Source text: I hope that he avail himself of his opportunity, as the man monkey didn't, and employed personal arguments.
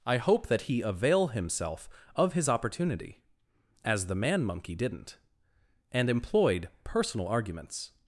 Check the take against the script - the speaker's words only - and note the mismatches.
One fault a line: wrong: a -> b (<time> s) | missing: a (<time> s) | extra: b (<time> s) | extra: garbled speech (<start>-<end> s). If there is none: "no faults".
no faults